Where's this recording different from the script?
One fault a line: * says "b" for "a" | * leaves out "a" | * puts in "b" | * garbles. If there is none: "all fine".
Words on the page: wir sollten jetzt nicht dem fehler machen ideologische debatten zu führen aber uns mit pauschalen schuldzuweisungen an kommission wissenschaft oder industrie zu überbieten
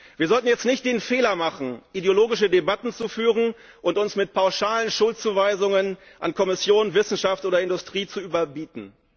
* says "den" for "dem"
* says "und" for "aber"